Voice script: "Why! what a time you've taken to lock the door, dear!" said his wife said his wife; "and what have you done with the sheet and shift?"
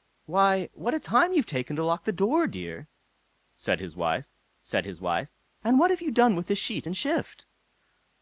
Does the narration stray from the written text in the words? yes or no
no